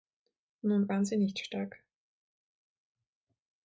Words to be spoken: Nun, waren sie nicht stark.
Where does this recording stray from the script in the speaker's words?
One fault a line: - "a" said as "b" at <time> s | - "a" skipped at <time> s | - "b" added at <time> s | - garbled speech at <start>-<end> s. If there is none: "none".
none